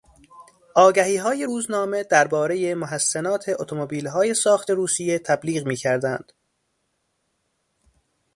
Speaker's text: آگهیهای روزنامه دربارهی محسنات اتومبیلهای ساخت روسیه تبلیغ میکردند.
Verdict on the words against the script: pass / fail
pass